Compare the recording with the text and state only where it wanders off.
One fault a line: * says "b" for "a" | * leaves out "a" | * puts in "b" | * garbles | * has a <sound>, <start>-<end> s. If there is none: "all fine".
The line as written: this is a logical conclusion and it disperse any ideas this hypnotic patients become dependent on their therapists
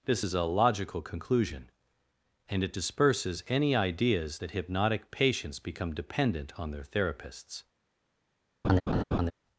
* says "disperses" for "disperse"
* says "that" for "this"
* has a laugh, 8.6-9.3 s